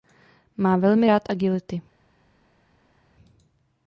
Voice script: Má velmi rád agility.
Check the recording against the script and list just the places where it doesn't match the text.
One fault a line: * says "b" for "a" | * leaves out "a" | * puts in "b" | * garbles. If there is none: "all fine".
all fine